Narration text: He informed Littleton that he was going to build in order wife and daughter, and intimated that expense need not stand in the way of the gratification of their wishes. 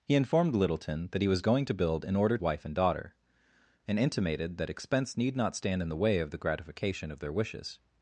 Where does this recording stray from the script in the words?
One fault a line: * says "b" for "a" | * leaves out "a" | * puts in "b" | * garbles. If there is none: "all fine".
all fine